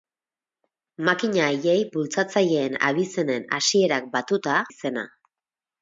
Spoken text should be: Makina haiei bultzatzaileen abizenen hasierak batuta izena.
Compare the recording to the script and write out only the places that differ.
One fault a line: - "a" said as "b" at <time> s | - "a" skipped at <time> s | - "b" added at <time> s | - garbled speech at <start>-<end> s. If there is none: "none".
none